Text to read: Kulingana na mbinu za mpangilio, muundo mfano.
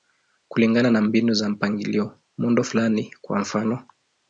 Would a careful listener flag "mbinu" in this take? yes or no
no